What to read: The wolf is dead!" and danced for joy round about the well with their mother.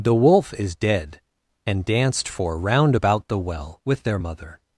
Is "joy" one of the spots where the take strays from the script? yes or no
yes